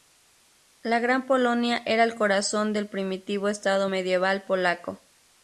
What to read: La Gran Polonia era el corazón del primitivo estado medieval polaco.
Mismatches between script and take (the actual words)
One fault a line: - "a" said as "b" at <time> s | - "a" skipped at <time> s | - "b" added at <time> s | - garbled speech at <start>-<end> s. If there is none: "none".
none